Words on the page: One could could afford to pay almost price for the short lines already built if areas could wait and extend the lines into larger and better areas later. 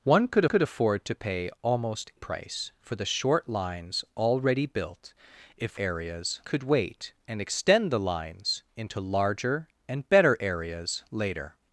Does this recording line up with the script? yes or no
yes